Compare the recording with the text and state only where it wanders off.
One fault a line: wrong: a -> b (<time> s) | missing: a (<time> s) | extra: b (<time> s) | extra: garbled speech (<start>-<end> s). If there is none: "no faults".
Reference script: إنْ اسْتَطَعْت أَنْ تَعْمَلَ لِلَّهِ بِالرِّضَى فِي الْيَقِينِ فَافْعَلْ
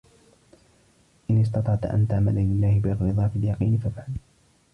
no faults